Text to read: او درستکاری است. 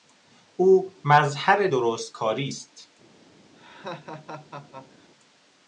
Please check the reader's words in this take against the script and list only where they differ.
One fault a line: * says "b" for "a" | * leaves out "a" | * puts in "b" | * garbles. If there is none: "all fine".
* puts in "مظهر"